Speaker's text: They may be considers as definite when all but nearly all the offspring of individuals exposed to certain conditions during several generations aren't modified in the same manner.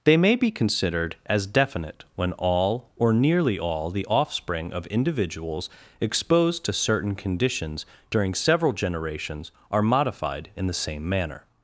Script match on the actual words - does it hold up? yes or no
no